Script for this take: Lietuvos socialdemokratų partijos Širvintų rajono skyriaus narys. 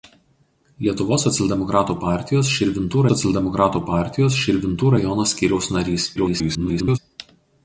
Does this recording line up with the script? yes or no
no